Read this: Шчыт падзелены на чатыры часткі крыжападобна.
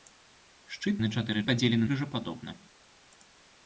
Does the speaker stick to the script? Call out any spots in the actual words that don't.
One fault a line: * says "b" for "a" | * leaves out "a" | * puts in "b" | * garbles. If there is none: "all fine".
* leaves out "падзелены"
* says "падзелены" for "часткі"